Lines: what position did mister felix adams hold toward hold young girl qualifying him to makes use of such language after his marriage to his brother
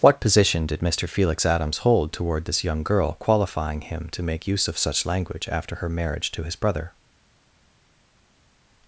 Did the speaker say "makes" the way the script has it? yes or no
no